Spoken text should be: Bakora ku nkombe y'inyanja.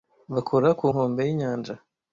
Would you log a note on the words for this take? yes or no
no